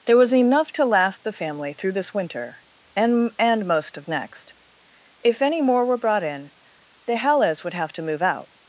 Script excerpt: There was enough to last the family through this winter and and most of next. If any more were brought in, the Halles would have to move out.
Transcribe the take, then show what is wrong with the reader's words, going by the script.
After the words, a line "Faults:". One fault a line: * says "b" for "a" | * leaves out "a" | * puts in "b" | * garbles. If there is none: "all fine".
There was enough to last the family through this winter and and most of next. If any more were brought in, the Halles would have to move out.
Faults:
all fine